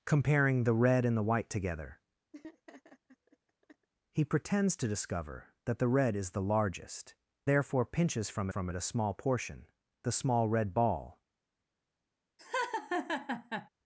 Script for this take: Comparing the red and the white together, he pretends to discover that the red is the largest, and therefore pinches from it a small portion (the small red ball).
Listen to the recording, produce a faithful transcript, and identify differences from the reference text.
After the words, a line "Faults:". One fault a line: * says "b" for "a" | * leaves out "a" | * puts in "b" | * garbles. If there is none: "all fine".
Comparing the red and the white together, he pretends to discover that the red is the largest, therefore pinches from from it a small portion (the small red ball).
Faults:
* leaves out "and"
* puts in "from"